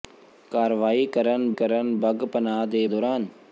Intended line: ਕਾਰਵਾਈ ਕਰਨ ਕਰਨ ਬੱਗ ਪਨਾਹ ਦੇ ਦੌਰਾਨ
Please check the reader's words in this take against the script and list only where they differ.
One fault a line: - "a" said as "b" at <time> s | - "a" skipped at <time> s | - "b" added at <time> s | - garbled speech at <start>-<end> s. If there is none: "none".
none